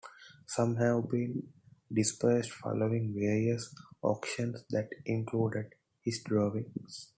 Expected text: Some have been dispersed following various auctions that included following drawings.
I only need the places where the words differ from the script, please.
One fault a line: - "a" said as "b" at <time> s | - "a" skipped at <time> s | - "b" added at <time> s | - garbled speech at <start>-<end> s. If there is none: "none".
- "following" said as "his" at 6.0 s